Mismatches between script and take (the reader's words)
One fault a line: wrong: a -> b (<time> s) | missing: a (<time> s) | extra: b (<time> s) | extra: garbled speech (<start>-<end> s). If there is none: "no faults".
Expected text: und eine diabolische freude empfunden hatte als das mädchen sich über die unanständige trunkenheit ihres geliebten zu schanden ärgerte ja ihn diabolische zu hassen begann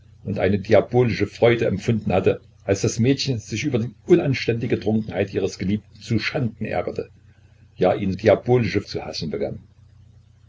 no faults